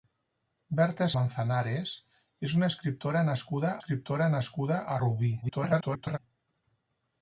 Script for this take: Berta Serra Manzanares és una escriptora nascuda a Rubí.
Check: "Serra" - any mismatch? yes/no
yes